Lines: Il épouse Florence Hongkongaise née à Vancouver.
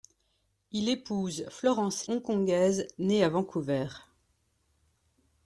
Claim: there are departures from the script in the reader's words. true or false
false